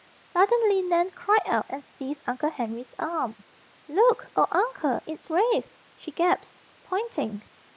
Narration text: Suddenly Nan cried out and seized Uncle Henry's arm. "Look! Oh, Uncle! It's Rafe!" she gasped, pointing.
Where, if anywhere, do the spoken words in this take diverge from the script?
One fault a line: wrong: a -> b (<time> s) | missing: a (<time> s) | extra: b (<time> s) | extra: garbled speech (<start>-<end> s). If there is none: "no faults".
no faults